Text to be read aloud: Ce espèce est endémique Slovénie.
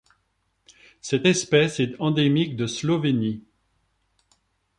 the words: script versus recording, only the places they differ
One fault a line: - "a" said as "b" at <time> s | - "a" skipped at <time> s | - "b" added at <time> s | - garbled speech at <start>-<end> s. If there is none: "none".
- "Ce" said as "Cette" at 1.0 s
- "de" added at 2.5 s